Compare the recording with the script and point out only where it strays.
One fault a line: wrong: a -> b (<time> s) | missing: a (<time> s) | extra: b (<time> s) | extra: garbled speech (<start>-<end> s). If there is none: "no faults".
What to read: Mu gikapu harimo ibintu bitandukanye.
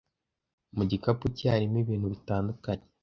extra: cye (1.4 s)